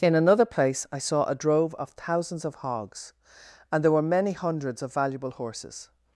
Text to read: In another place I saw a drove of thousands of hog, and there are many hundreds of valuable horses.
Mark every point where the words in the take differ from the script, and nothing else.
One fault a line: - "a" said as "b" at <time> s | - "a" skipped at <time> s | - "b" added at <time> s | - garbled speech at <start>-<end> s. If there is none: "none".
- "hog" said as "hogs" at 2.5 s
- "are" said as "were" at 3.9 s